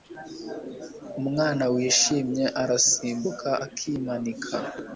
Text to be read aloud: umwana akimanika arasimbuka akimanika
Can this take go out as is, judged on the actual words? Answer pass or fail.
fail